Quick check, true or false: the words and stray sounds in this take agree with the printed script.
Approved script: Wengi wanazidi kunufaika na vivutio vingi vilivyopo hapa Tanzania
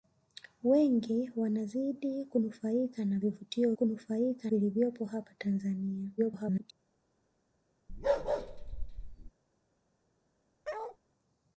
false